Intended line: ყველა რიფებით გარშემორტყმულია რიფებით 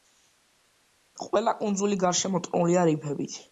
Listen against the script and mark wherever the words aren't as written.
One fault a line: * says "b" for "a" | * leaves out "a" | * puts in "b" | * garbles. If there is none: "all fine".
* says "კუნძული" for "რიფებით"